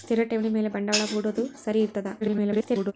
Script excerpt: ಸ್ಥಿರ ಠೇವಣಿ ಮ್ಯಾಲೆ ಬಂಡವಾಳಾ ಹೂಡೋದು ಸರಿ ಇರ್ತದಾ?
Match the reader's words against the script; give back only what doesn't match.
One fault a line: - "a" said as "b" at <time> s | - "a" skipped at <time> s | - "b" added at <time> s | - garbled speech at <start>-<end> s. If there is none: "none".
- garbled speech at 2.2-2.9 s